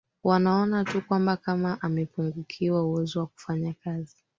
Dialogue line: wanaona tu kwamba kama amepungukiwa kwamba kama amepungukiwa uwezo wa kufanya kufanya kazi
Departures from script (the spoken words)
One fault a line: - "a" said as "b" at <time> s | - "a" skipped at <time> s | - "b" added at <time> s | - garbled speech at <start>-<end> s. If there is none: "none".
- "kwamba kama amepungukiwa" skipped at 2.8 s
- "kufanya" skipped at 3.7 s